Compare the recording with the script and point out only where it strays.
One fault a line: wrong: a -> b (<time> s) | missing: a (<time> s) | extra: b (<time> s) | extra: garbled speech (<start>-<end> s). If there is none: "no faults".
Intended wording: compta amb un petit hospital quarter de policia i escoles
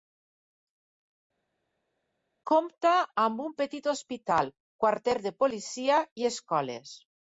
no faults